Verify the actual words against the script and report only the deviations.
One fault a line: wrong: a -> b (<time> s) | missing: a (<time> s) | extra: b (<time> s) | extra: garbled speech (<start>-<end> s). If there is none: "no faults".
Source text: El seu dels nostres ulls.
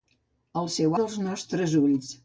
no faults